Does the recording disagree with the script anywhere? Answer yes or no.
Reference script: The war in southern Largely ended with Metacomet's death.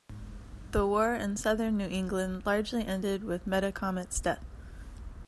yes